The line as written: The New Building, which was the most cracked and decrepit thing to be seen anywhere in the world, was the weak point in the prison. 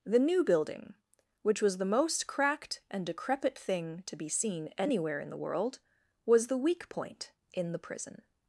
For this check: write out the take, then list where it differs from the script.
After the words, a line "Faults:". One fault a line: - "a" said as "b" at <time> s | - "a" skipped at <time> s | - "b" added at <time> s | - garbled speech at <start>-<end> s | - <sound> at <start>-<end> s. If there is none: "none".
The New Building, which was the most cracked and decrepit thing to be seen anywhere in the world, was the weak point in the prison.
Faults:
none